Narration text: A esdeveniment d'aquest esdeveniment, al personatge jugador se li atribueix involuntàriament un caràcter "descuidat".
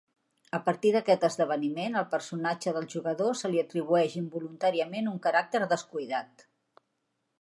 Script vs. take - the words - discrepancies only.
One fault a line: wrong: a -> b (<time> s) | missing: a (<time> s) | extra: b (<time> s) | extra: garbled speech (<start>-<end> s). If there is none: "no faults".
wrong: esdeveniment -> partir (0.7 s)
extra: del (2.8 s)